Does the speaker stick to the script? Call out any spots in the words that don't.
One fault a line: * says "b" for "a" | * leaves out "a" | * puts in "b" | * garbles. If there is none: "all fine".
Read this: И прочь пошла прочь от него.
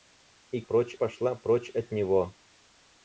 all fine